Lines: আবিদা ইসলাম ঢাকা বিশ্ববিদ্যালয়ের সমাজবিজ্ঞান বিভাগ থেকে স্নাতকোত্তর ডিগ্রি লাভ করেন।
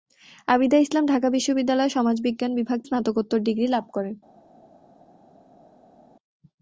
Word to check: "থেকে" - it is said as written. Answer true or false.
false